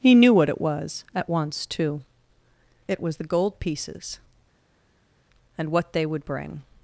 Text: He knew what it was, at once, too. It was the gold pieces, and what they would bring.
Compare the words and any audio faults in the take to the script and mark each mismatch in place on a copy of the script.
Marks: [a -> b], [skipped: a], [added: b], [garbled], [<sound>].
He knew what it was, at once, too. It was the gold pieces, and what they would bring.